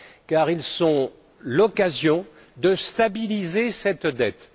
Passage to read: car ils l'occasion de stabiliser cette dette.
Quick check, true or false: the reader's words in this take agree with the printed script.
false